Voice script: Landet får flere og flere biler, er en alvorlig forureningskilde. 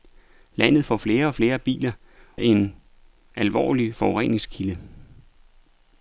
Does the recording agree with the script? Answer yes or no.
yes